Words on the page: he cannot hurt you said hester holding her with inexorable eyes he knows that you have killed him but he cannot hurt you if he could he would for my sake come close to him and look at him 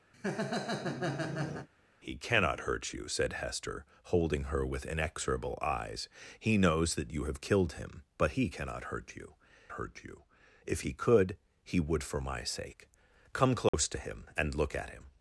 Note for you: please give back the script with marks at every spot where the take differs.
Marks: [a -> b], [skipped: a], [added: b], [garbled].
he cannot hurt you said hester holding her with inexorable eyes he knows that you have killed him but he cannot hurt you [added: hurt you] if he could he would for my sake come close to him and look at him